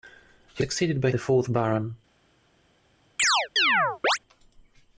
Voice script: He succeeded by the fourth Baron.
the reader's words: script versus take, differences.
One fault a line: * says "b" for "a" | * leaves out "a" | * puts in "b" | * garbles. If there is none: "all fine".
all fine